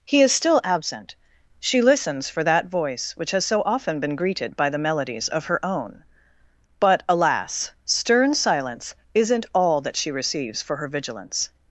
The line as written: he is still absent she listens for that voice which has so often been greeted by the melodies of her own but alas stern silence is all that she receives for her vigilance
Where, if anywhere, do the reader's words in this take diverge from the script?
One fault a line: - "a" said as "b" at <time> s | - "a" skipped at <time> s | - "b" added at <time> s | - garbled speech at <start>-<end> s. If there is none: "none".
- "is" said as "isn't" at 9.1 s